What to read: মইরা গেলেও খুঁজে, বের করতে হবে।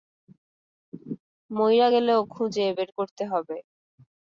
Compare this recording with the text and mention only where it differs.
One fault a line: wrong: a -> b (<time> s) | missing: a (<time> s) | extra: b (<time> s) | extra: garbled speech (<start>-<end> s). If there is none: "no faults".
no faults